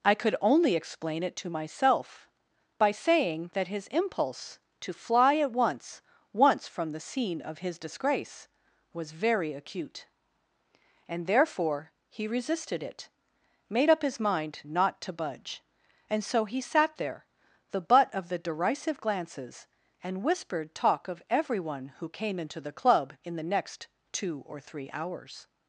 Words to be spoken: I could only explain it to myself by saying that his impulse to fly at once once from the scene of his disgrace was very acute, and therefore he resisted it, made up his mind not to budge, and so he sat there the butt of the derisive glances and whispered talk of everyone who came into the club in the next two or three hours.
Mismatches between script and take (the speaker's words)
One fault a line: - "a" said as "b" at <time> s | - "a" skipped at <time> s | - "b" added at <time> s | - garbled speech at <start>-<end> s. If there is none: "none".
none